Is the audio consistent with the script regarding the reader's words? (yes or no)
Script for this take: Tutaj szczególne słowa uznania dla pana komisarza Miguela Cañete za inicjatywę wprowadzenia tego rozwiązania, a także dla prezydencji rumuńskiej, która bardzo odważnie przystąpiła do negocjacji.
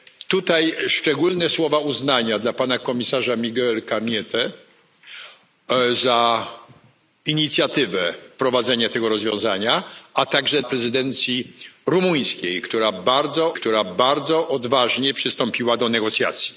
no